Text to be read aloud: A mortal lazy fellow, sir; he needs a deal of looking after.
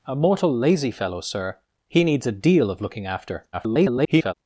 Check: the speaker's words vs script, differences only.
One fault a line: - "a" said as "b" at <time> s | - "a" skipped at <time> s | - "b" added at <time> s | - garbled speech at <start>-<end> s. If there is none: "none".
- garbled speech at 3.5-4.3 s